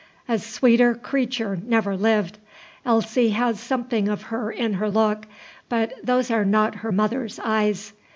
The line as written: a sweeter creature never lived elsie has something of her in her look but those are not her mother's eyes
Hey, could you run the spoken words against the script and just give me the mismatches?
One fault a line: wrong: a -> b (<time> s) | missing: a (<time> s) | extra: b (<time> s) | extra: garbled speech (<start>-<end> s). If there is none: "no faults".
no faults